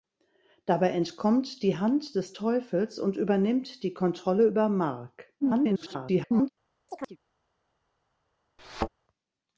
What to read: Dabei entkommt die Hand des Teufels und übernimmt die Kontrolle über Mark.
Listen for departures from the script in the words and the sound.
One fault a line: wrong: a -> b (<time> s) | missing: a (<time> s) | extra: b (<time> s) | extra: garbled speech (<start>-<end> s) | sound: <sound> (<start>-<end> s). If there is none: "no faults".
extra: garbled speech (5.4-6.5 s)
sound: chirp (6.9-7.2 s)
sound: thud (8.6-8.9 s)